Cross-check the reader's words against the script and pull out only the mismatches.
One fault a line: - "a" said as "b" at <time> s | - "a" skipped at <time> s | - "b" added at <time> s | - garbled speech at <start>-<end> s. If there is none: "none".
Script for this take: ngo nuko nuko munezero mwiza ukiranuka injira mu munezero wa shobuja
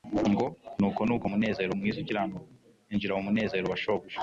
none